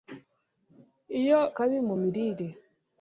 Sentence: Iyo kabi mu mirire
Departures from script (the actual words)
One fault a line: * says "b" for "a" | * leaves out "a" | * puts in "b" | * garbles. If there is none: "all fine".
all fine